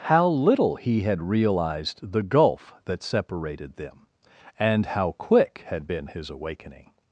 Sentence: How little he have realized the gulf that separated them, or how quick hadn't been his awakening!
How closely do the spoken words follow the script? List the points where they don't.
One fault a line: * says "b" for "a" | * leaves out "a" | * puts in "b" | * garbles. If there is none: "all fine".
* says "had" for "have"
* says "and" for "or"
* says "had" for "hadn't"